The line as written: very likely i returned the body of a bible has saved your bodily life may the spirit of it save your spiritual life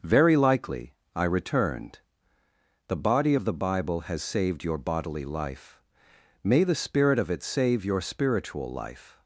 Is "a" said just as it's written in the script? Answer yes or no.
no